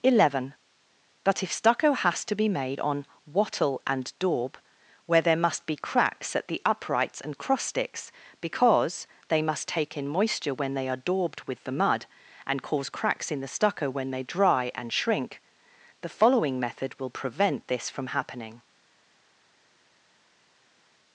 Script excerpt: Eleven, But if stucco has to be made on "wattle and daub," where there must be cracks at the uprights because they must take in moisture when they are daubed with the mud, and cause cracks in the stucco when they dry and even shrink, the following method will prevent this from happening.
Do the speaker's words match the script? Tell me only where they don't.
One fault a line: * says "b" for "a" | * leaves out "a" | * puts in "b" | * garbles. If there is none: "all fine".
* puts in "and cross sticks"
* leaves out "even"